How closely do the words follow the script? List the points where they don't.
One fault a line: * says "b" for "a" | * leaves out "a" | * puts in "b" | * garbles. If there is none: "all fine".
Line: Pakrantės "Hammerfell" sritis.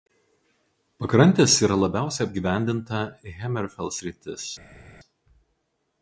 * puts in "yra labiausiai apgyvendinta"